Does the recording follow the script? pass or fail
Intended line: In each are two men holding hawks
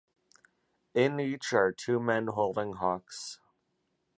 pass